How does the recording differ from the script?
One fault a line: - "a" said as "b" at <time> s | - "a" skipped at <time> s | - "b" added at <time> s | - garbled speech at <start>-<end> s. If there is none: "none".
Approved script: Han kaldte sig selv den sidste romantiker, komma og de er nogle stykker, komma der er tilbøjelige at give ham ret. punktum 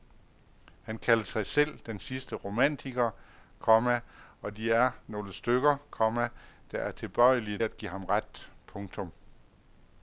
none